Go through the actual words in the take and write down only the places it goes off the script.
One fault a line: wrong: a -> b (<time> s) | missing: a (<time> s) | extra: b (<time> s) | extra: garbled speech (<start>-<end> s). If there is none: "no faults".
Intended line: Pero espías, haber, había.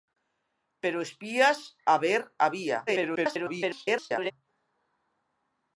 extra: garbled speech (2.9-4.3 s)